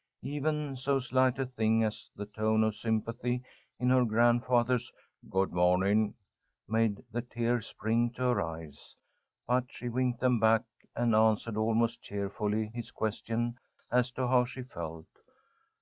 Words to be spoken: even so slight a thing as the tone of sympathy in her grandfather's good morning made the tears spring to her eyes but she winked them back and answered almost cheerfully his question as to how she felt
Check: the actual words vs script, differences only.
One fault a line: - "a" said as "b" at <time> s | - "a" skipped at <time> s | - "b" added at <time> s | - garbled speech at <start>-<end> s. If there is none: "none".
none